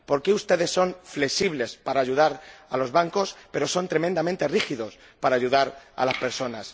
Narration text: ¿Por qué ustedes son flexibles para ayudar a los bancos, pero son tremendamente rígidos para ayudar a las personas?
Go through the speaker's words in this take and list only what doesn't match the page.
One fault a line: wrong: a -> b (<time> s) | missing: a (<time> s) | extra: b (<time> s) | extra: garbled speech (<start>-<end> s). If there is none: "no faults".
no faults